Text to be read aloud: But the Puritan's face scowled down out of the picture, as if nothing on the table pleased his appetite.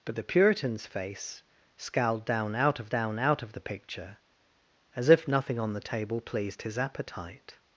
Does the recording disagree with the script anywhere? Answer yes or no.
yes